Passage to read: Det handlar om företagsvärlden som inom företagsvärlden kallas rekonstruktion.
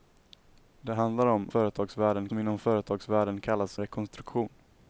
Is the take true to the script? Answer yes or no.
yes